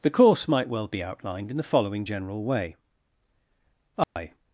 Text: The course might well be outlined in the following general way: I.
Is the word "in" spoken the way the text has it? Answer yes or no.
yes